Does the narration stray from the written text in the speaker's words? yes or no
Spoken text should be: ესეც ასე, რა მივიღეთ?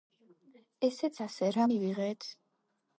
no